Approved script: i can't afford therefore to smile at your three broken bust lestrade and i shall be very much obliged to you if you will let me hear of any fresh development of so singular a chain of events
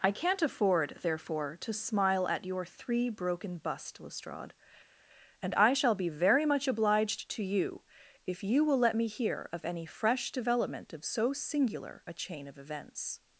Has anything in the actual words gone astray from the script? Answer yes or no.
no